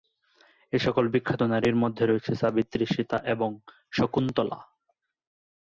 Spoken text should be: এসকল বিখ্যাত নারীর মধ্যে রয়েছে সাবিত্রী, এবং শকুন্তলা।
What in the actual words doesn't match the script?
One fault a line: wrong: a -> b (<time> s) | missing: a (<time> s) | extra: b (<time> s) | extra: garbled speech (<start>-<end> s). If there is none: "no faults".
extra: সীতা (2.9 s)